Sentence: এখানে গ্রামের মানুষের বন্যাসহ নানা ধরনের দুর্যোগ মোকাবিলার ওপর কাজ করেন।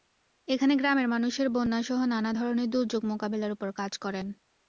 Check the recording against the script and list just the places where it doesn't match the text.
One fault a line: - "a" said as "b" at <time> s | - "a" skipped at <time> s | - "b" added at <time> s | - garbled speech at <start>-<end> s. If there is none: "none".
none